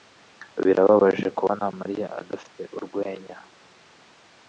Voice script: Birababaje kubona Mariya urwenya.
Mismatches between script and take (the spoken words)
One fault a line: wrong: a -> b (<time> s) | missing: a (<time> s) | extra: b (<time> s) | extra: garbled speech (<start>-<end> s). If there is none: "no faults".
extra: adafite (2.2 s)